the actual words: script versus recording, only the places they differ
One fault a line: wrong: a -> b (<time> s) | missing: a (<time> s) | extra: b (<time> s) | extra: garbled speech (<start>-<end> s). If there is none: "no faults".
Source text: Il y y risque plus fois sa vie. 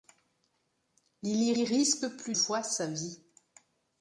no faults